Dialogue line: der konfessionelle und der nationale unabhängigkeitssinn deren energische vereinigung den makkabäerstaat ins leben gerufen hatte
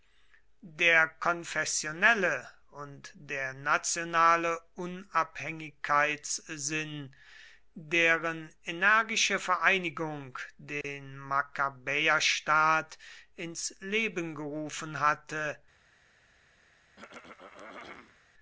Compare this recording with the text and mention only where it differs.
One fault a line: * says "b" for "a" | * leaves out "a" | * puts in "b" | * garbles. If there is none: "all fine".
all fine